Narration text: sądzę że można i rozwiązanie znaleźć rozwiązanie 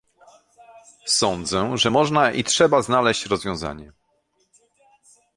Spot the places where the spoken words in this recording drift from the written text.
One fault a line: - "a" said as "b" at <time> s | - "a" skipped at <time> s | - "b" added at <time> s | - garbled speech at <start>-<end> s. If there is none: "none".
- "rozwiązanie" said as "trzeba" at 2.4 s